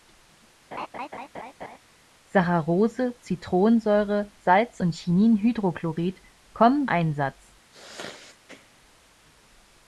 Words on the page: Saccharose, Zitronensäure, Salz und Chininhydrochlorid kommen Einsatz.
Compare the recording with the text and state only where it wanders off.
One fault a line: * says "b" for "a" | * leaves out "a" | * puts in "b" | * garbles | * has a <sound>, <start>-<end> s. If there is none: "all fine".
* has a laugh, 0.7-1.8 s
* has a sneeze, 7.7-8.7 s